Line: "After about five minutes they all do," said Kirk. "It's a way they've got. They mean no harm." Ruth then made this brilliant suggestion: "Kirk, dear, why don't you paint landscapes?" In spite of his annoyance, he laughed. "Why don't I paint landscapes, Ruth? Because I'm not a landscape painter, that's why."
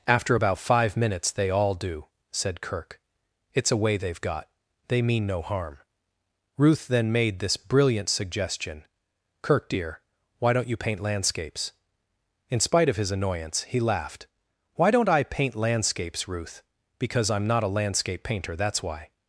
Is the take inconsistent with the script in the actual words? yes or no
no